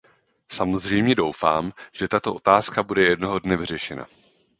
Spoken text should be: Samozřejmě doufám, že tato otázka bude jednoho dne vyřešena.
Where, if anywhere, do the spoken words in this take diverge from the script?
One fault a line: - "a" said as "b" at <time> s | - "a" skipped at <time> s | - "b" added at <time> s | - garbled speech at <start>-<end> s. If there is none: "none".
none